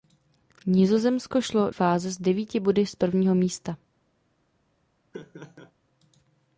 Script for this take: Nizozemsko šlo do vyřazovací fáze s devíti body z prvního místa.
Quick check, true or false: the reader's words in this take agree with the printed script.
false